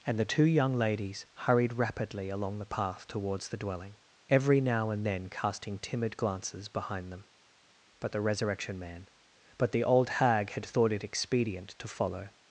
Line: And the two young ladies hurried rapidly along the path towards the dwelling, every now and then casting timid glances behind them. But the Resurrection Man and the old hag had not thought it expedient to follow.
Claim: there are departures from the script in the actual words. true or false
true